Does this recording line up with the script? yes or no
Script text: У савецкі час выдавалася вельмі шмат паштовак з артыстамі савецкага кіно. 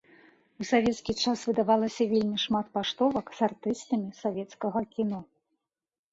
yes